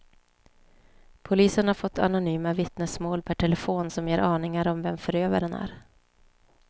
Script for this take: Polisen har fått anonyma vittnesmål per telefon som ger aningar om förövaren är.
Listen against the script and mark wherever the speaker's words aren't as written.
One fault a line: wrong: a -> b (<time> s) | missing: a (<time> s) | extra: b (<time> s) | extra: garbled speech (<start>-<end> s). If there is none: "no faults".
extra: vem (4.8 s)